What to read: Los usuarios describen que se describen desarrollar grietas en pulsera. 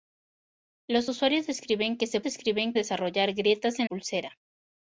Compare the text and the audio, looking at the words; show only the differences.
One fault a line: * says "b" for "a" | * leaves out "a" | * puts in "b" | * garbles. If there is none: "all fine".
all fine